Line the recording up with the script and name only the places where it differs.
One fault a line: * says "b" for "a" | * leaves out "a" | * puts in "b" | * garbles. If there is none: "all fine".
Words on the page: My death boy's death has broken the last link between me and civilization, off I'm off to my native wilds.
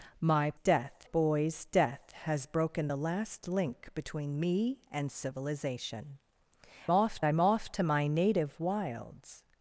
all fine